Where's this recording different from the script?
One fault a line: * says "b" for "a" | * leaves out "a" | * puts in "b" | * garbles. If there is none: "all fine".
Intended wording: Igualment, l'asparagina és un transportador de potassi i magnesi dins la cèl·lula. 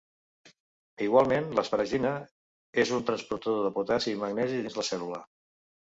all fine